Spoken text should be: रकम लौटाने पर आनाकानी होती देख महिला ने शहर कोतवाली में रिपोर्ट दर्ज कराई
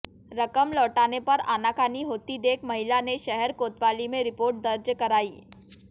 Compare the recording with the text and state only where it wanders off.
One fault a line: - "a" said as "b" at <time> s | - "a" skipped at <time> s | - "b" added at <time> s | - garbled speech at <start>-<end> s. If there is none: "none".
none